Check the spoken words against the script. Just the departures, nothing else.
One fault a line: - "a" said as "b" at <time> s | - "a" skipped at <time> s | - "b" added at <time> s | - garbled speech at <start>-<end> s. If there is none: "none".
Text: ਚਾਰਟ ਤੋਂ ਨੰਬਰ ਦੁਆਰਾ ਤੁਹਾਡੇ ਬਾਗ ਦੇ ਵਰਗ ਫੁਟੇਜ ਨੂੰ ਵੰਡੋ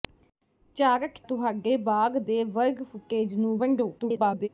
- "ਤੋਂ ਨੰਬਰ ਦੁਆਰਾ" skipped at 1.2 s
- garbled speech at 4.0-4.5 s